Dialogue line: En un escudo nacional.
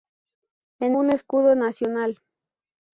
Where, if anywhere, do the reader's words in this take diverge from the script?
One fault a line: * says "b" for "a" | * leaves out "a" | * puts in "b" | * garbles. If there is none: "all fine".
all fine